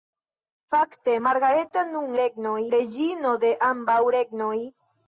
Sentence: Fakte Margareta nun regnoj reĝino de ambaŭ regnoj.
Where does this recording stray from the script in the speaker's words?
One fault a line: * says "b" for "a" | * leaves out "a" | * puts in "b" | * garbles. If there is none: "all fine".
all fine